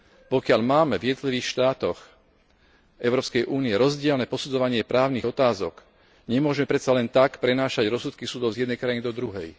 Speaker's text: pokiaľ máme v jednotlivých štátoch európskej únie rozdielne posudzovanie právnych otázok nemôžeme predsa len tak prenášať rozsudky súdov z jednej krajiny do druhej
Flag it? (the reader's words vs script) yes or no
no